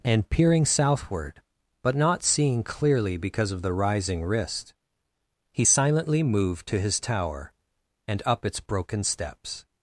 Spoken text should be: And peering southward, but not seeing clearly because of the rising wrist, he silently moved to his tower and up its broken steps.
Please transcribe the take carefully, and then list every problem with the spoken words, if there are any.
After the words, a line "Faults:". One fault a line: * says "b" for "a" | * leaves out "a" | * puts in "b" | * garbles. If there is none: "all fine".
And peering southward, but not seeing clearly because of the rising wrist, he silently moved to his tower and up its broken steps.
Faults:
all fine